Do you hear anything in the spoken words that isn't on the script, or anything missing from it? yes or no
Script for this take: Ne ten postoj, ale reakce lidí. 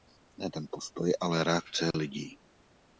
no